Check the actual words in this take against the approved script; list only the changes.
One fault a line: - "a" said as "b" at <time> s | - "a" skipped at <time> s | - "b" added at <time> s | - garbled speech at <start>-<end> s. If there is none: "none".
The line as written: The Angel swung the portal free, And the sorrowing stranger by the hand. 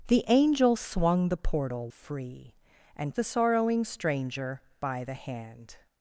none